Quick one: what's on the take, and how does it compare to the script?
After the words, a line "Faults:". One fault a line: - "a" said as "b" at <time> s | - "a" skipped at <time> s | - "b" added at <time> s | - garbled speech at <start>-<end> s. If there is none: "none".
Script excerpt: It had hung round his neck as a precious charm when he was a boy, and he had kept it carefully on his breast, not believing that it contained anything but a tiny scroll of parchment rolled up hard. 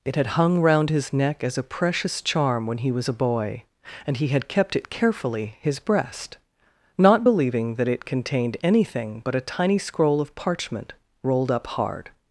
It had hung round his neck as a precious charm when he was a boy, and he had kept it carefully his breast, not believing that it contained anything but a tiny scroll of parchment rolled up hard.
Faults:
- "on" skipped at 5.6 s